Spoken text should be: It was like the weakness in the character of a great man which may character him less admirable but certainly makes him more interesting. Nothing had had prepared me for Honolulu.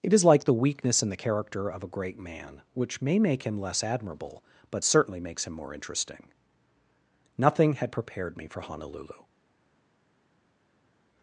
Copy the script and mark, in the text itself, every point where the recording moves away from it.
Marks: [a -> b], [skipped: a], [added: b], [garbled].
It [was -> is] like the weakness in the character of a great man which may [character -> make] him less admirable but certainly makes him more interesting. Nothing had [skipped: had] prepared me for Honolulu.